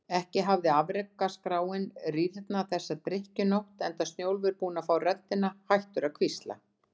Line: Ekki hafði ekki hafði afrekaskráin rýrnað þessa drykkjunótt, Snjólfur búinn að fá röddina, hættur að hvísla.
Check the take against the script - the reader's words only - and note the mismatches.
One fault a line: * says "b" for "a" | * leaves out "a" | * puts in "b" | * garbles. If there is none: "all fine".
* leaves out "ekki hafði"
* puts in "enda"